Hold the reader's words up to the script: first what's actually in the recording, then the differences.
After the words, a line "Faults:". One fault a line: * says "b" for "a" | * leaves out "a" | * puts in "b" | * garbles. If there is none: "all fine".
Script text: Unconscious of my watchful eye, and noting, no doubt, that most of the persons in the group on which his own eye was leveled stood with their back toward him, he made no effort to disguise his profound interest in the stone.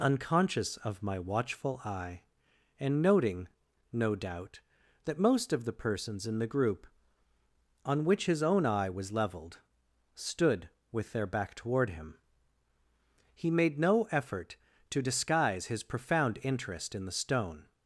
Unconscious of my watchful eye, and noting, no doubt, that most of the persons in the group on which his own eye was leveled stood with their back toward him, he made no effort to disguise his profound interest in the stone.
Faults:
all fine